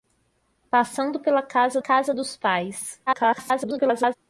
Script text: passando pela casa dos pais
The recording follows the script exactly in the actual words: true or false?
false